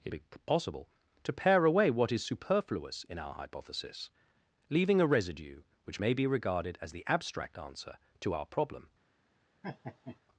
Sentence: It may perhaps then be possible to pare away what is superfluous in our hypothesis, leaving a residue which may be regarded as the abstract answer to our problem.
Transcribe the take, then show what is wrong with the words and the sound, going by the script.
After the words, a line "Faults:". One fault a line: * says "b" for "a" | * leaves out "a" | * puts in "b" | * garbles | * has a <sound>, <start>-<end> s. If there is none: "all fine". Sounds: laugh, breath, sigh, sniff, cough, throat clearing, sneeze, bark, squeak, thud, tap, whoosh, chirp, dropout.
It be possible to pare away what is superfluous in our hypothesis, leaving a residue which may be regarded as the abstract answer to our problem.
Faults:
* leaves out "may perhaps then"
* has a laugh, 9.6-10.2 s